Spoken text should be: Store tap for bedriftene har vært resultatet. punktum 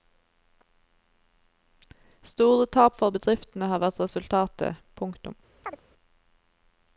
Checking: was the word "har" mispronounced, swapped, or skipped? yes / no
no